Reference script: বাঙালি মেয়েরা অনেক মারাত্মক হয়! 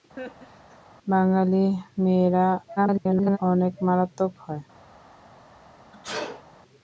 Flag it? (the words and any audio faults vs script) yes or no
yes